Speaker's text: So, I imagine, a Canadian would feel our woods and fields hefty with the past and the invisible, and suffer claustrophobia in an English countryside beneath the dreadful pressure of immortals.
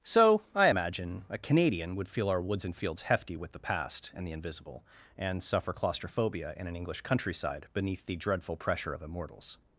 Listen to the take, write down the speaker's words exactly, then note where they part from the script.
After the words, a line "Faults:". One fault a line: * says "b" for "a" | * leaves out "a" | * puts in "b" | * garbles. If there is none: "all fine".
So, I imagine, a Canadian would feel our woods and fields hefty with the past and the invisible, and suffer claustrophobia in an English countryside beneath the dreadful pressure of immortals.
Faults:
all fine